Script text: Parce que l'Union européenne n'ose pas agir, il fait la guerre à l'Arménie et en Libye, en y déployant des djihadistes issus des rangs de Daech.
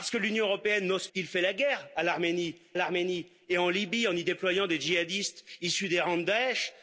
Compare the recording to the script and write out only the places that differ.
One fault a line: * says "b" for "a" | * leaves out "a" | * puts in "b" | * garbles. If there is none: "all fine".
* leaves out "pas agir"
* puts in "l'Arménie"